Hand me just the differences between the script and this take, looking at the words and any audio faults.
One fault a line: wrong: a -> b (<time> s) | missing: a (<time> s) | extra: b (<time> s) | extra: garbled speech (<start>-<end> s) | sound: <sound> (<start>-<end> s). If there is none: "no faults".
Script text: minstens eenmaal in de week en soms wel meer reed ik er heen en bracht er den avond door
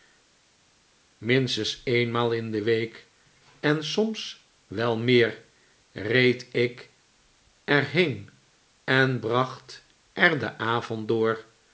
no faults